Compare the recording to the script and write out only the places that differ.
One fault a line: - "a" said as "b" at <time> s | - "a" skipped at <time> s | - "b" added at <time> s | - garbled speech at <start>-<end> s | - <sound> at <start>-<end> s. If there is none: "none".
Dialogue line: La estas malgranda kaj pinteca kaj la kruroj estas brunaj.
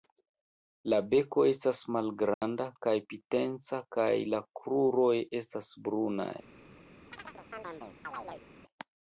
- "beko" added at 1.1 s
- dropout at 2.3-2.4 s
- chirp at 7.1-8.4 s